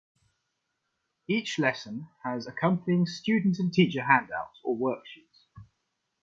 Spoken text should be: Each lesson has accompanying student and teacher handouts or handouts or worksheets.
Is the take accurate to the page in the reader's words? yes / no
no